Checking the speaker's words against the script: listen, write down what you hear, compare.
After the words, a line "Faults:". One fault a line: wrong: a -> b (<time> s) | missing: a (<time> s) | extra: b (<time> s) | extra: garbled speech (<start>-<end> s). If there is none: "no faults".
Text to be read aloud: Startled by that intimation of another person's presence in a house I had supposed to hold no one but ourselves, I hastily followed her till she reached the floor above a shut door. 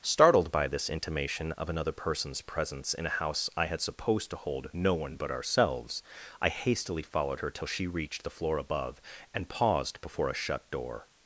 Startled by this intimation of another person's presence in a house I had supposed to hold no one but ourselves, I hastily followed her till she reached the floor above and paused before a shut door.
Faults:
wrong: that -> this (0.7 s)
extra: and paused before (9.3 s)